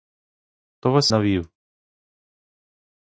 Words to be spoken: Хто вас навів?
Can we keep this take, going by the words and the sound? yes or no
yes